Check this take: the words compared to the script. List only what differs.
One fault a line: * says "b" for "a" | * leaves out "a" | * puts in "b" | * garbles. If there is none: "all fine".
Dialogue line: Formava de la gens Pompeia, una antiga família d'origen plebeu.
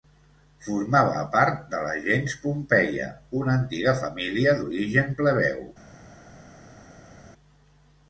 * puts in "part"